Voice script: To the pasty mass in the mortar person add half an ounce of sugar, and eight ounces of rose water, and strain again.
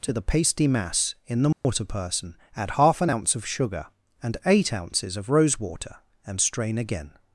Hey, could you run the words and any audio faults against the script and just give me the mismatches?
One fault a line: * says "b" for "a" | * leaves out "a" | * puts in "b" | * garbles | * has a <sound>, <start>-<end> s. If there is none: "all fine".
* has a dropout, 1.5-1.6 s